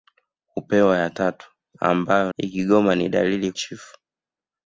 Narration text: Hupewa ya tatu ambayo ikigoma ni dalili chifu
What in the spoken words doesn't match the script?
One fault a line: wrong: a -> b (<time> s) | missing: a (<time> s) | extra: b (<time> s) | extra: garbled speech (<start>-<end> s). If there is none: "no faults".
no faults